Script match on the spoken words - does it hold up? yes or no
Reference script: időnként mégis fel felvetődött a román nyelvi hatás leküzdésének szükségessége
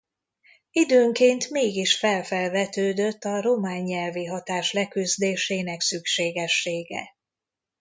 yes